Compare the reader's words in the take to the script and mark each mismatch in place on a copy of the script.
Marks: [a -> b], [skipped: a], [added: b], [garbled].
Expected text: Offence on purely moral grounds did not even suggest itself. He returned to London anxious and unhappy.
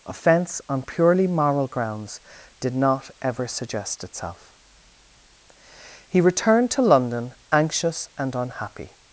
Offence on purely moral grounds did not [even -> ever] suggest itself. He returned to London anxious and unhappy.